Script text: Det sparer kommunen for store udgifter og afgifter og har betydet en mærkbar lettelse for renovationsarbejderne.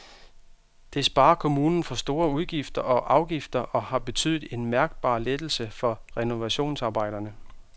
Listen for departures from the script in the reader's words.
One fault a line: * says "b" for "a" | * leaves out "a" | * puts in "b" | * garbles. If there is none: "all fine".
all fine